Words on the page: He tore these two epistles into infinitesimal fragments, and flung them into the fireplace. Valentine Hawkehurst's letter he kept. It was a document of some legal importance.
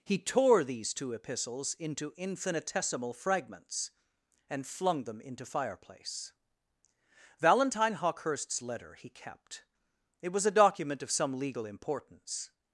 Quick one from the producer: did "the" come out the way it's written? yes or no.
no